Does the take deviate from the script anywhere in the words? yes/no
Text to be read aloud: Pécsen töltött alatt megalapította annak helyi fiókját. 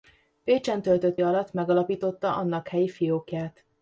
no